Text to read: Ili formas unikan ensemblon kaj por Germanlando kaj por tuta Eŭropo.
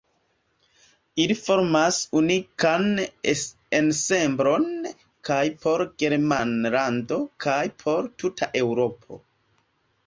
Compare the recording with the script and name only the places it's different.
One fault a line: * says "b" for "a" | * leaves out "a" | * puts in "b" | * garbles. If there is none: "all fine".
all fine